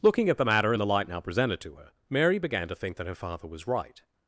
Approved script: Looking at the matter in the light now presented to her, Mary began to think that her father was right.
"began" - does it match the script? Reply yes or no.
yes